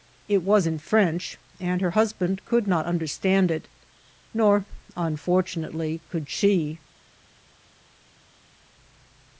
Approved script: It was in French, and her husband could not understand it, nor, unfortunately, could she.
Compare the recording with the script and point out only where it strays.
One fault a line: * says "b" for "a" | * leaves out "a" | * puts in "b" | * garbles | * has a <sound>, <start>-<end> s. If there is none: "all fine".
all fine